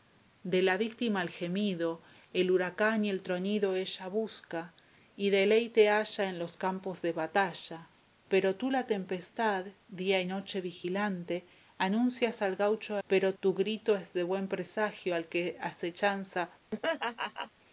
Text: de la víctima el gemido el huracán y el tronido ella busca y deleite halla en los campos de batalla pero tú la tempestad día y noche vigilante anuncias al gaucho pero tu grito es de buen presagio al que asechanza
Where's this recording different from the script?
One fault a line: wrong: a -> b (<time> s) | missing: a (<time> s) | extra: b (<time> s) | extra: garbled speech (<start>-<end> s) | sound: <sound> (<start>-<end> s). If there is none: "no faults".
sound: laugh (16.7-17.5 s)